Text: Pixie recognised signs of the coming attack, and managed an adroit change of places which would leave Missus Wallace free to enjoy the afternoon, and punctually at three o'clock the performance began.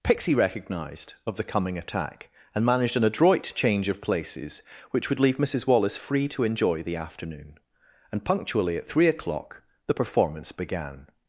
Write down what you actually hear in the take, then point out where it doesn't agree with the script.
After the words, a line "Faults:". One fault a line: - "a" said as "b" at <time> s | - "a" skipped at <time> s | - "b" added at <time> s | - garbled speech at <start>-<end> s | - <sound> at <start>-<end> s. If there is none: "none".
Pixie recognised of the coming attack, and managed an adroit change of places which would leave Missus Wallace free to enjoy the afternoon, and punctually at three o'clock the performance began.
Faults:
- "signs" skipped at 1.1 s